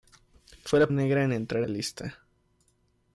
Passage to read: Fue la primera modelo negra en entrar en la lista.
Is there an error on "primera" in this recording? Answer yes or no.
yes